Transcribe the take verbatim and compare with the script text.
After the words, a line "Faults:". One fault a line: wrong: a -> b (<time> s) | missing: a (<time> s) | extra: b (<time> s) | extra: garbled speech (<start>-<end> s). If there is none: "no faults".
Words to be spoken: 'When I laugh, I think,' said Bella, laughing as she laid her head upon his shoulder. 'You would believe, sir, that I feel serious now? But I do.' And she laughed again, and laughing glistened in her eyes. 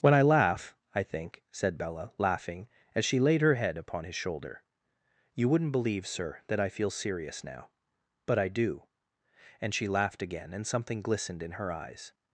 'When I laugh, I think,' said Bella, laughing as she laid her head upon his shoulder. 'You wouldn't believe, sir, that I feel serious now? But I do.' And she laughed again, and something glistened in her eyes.
Faults:
wrong: would -> wouldn't (5.5 s)
wrong: laughing -> something (10.7 s)